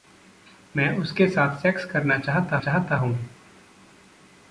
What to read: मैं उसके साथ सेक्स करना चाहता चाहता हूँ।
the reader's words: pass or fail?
pass